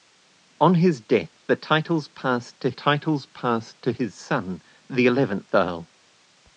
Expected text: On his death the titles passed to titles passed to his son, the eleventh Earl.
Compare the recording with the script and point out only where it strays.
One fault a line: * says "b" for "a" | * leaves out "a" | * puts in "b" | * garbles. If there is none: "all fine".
all fine